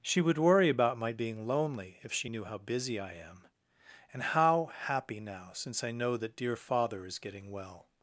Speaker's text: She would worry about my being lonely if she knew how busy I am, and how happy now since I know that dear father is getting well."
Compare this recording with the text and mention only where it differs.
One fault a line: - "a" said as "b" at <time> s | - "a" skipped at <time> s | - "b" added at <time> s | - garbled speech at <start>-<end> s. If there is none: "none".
none